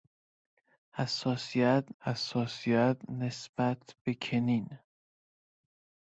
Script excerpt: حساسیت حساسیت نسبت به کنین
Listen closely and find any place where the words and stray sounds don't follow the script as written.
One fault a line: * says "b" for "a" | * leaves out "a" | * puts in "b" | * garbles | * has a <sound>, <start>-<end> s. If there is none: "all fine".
all fine